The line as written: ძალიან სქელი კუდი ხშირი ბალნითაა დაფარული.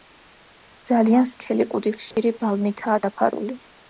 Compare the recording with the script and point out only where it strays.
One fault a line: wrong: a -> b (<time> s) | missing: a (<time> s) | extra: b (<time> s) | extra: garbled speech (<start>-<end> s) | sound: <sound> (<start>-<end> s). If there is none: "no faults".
sound: dropout (2.1-2.2 s)